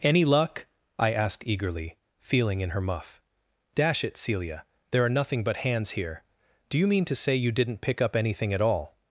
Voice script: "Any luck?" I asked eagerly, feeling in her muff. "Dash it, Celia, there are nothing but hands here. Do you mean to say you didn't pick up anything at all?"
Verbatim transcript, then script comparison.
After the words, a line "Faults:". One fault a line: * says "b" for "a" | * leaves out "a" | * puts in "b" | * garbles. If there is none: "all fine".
"Any luck?" I asked eagerly, feeling in her muff. "Dash it, Celia, there are nothing but hands here. Do you mean to say you didn't pick up anything at all?"
Faults:
all fine